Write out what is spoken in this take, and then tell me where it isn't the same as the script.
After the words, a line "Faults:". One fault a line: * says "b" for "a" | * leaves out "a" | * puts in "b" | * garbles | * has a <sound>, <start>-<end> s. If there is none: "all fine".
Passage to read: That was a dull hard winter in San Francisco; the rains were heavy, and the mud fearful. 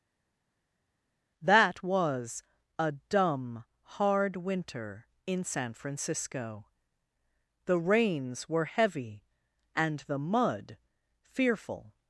That was a dumb hard winter in San Francisco; the rains were heavy, and the mud fearful.
Faults:
* says "dumb" for "dull"